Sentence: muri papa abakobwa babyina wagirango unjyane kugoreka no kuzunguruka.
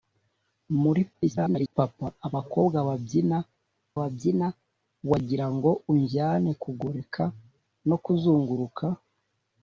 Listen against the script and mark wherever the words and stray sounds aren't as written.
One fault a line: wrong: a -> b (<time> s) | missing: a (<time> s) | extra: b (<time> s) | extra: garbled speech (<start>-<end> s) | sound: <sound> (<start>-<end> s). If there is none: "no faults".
extra: garbled speech (1.1-1.7 s)
extra: babyina (4.0 s)